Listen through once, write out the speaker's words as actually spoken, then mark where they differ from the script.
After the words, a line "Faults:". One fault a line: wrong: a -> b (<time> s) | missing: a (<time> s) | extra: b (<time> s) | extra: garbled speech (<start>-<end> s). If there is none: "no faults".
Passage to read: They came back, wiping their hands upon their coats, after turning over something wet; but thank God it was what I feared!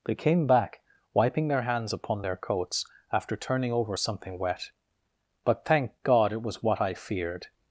They came back, wiping their hands upon their coats, after turning over something wet; but thank God it was what I feared!
Faults:
no faults